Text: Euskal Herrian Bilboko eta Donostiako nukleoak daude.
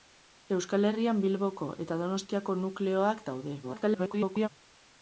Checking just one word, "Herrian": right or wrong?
right